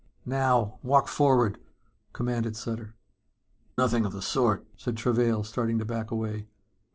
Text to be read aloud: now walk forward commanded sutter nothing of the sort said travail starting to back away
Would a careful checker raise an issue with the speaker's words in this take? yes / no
no